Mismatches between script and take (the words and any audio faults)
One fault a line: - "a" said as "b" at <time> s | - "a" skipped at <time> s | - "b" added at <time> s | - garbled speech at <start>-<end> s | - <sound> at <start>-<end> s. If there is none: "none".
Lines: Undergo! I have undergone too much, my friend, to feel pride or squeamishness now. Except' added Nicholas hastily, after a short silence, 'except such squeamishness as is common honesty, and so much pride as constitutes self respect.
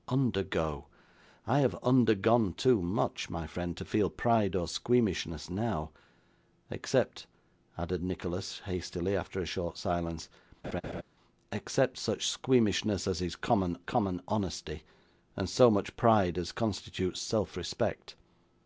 - laugh at 10.6-11.0 s
- "common" added at 13.8 s